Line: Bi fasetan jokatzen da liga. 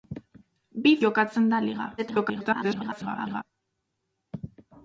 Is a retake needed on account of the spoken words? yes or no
yes